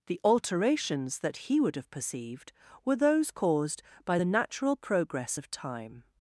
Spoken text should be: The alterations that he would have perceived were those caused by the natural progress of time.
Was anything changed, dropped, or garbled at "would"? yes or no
no